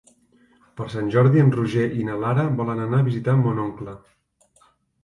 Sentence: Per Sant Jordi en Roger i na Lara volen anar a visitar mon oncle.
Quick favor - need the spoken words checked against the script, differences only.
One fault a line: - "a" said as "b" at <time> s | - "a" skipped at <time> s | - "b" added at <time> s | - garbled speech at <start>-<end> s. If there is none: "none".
none